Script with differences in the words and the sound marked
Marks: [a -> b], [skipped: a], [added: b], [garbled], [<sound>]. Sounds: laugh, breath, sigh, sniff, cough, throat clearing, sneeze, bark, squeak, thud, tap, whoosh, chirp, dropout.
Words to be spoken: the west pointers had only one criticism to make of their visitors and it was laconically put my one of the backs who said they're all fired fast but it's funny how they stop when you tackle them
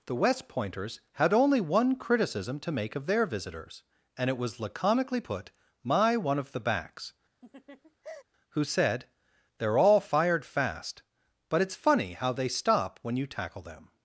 the west pointers had only one criticism to make of their visitors and it was laconically put my one of the backs [laugh] who said they're all fired fast but it's funny how they stop when you tackle them